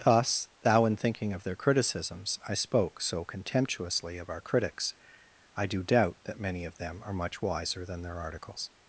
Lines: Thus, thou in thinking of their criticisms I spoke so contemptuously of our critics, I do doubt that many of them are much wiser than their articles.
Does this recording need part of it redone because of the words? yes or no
no